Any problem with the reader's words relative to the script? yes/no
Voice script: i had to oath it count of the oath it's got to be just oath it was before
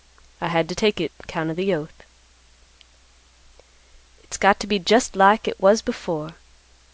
yes